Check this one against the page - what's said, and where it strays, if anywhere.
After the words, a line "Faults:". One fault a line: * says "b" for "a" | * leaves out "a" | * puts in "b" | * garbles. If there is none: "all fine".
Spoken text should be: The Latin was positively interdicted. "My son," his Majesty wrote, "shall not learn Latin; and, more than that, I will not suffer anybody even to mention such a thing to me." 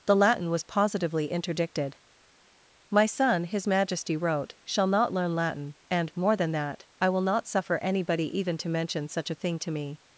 The Latin was positively interdicted. "My son," his Majesty wrote, "shall not learn Latin; and, more than that, I will not suffer anybody even to mention such a thing to me."
Faults:
all fine